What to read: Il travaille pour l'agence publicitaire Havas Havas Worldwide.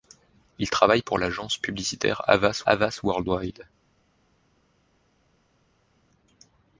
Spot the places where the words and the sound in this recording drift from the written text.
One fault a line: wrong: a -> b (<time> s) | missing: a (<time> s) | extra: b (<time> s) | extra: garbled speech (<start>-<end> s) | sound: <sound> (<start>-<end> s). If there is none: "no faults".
no faults